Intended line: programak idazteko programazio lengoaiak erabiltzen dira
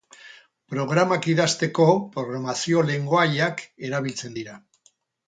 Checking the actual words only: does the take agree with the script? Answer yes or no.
yes